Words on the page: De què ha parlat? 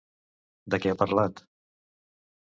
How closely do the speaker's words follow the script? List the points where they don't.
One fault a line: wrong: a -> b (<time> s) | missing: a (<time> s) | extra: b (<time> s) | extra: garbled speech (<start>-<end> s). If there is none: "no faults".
no faults